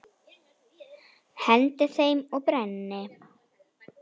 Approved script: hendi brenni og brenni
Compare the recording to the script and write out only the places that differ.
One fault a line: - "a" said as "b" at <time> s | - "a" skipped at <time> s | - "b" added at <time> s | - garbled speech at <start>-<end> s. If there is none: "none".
- "brenni" said as "þeim" at 2.0 s